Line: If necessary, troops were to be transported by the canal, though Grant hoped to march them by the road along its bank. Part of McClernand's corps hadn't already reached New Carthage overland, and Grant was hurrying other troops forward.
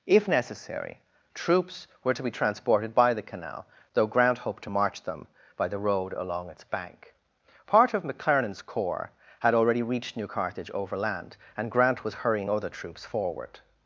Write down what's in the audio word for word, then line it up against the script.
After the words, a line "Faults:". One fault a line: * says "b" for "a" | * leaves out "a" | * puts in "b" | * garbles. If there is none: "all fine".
If necessary, troops were to be transported by the canal, though Grant hoped to march them by the road along its bank. Part of McClernand's corps had already reached New Carthage overland, and Grant was hurrying other troops forward.
Faults:
* says "had" for "hadn't"